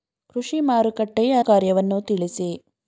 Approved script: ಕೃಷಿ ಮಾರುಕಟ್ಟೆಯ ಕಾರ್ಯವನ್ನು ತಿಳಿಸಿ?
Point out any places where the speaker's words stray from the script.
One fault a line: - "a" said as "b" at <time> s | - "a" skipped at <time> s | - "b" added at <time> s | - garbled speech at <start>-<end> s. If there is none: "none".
none